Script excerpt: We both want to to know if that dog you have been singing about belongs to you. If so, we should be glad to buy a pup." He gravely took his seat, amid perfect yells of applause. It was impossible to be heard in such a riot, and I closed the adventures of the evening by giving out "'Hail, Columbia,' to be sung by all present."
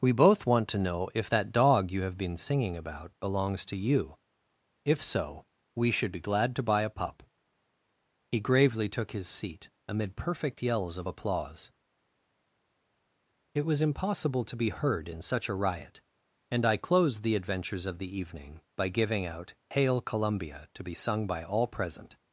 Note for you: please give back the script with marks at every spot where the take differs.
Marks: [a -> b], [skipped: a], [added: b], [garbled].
We both want to [skipped: to] know if that dog you have been singing about belongs to you. If so, we should be glad to buy a pup." He gravely took his seat, amid perfect yells of applause. It was impossible to be heard in such a riot, and I closed the adventures of the evening by giving out "'Hail, Columbia,' to be sung by all present."